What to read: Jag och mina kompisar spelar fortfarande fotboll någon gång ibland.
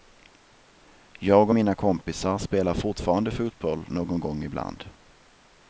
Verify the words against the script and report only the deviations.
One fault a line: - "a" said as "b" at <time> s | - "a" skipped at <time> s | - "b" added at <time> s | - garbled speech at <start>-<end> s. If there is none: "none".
none